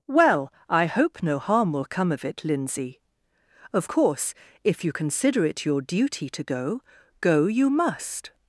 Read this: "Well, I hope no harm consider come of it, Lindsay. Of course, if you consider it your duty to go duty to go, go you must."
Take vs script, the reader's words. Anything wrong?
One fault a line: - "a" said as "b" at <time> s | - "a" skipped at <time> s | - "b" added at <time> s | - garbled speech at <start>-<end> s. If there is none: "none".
- "consider" said as "will" at 1.7 s
- "duty to go" skipped at 6.8 s